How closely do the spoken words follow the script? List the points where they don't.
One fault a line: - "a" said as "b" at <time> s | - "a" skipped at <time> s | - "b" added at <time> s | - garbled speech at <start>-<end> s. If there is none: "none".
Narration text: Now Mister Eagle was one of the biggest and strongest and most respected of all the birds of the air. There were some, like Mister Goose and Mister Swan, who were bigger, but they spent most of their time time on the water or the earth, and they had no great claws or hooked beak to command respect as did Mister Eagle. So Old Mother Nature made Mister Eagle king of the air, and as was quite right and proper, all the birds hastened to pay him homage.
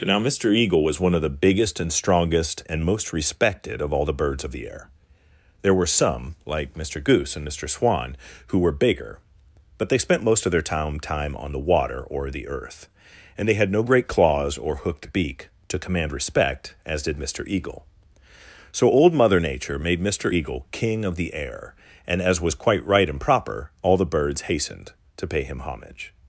none